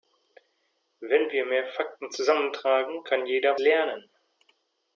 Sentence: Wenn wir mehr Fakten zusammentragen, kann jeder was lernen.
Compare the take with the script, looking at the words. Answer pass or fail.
fail